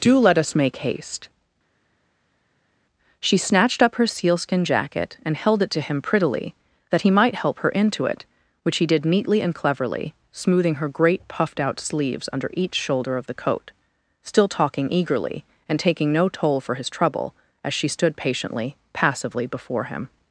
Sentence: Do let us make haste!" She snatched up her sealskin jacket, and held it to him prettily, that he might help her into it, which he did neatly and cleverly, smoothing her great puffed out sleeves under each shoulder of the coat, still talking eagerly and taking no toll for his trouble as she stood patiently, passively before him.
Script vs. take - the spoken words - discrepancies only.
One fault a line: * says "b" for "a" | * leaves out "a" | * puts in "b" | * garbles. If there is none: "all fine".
all fine